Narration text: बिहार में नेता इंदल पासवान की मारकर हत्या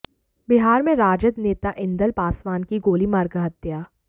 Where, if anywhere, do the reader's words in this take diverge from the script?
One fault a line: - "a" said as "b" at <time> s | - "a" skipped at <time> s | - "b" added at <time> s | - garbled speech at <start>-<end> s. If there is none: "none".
- "राजद" added at 0.9 s
- "गोली" added at 2.8 s